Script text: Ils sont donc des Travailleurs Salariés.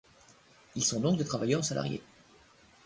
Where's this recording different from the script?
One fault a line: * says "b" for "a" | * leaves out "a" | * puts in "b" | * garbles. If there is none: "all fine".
all fine